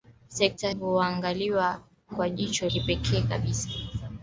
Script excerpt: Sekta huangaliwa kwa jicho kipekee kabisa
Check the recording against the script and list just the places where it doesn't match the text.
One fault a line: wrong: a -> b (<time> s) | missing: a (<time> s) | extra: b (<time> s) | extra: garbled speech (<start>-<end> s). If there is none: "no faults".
no faults